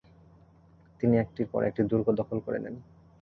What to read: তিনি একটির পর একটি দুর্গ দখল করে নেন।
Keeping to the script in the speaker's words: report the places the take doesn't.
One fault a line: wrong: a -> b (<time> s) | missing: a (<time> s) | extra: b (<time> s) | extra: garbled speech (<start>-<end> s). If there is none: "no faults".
no faults